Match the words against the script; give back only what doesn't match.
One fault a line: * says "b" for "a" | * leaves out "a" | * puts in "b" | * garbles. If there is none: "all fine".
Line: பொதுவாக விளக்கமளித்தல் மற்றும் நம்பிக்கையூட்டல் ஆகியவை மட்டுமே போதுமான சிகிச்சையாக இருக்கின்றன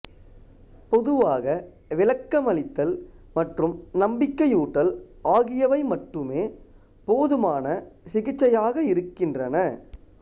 all fine